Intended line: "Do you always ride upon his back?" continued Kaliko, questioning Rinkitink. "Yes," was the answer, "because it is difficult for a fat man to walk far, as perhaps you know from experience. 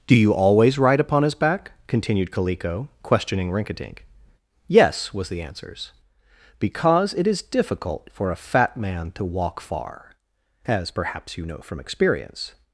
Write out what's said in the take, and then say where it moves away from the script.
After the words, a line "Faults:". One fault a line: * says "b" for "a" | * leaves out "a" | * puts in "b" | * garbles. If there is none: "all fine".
"Do you always ride upon his back?" continued Kaliko, questioning Rinkitink. "Yes," was the answers, "because it is difficult for a fat man to walk far, as perhaps you know from experience.
Faults:
* says "answers" for "answer"